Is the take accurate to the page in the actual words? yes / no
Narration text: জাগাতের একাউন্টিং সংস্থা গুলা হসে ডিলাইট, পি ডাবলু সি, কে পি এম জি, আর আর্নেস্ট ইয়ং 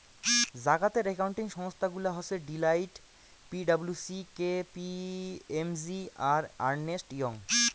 yes